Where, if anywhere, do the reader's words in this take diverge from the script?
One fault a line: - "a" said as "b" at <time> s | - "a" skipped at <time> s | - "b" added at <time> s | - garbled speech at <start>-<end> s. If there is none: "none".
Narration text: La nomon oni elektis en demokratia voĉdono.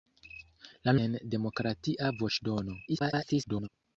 - "nomon oni elektis" skipped at 0.9 s
- garbled speech at 2.9-3.7 s